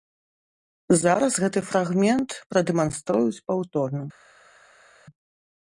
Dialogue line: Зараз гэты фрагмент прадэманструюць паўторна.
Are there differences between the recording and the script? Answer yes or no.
no